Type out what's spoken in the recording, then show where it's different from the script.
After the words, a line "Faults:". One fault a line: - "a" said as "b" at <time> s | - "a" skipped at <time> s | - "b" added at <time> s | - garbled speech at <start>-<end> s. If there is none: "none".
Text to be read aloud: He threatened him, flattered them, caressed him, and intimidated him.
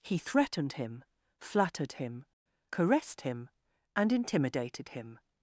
He threatened him, flattered him, caressed him, and intimidated him.
Faults:
- "them" said as "him" at 1.9 s